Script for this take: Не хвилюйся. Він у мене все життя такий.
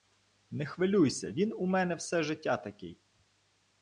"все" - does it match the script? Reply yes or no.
yes